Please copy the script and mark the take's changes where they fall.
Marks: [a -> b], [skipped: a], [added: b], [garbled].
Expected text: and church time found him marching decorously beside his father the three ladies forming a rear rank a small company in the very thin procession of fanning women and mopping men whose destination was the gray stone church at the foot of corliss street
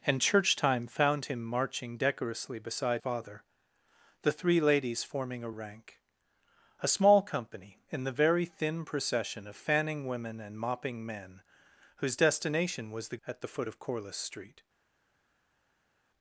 and church time found him marching decorously beside [skipped: his] father the three ladies forming a [skipped: rear] rank a small company in the very thin procession of fanning women and mopping men whose destination was the [skipped: gray stone church] at the foot of corliss street